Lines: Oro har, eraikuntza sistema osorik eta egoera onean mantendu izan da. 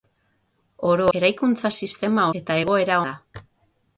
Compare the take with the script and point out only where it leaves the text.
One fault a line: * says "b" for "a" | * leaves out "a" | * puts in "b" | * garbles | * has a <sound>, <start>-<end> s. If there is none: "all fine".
* leaves out "har"
* leaves out "osorik"
* leaves out "onean mantendu izan"